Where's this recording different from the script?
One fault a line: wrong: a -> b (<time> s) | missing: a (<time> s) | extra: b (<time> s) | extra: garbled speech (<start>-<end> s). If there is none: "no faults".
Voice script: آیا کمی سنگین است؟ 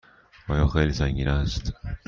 wrong: کمی -> خیلی (0.7 s)